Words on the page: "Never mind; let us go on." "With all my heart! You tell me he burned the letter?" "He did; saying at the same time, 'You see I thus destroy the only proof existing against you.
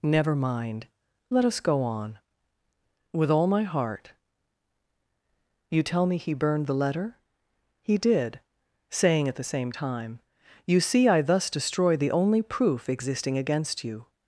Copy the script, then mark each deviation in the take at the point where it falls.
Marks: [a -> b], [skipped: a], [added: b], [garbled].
"Never mind; let us go on." "With all my heart! You tell me he burned the letter?" "He did; saying at the same time, 'You see I thus destroy the only proof existing against you.